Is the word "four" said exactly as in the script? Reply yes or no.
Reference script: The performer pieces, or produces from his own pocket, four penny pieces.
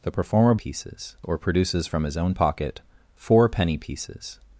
yes